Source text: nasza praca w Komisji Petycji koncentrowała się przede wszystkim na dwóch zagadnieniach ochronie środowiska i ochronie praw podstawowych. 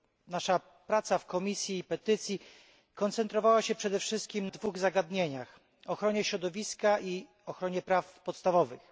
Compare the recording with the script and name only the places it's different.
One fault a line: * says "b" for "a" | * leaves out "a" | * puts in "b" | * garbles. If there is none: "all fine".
* leaves out "na"